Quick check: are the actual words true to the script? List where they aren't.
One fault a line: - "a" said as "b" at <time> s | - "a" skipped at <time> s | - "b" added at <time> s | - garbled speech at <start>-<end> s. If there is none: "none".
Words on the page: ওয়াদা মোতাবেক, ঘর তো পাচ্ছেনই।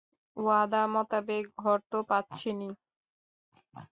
none